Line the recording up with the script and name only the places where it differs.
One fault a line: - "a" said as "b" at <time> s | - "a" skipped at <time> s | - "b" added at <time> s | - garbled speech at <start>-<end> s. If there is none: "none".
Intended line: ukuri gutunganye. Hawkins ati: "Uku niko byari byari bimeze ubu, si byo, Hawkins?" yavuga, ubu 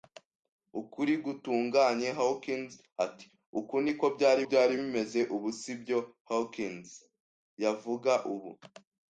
none